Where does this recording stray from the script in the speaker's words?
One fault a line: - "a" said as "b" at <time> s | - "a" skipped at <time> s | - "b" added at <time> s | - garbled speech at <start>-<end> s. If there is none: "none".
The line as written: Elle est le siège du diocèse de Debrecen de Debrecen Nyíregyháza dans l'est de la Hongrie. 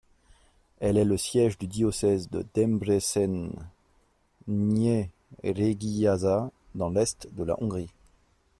- "de Debrecen" skipped at 3.5 s